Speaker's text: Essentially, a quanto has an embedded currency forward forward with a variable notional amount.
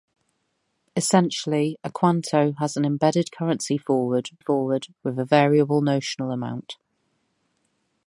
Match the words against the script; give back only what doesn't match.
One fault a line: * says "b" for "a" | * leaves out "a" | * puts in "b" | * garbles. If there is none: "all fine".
all fine